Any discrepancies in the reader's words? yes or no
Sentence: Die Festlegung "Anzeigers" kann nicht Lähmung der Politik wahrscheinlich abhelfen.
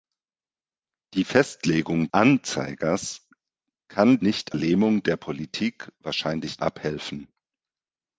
no